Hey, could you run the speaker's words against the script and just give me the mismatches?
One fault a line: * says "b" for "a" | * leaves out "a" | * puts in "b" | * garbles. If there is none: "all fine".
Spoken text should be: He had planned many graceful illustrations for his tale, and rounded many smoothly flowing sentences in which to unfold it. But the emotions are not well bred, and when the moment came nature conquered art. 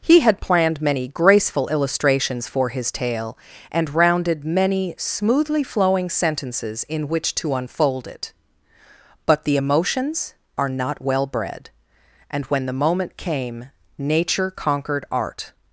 all fine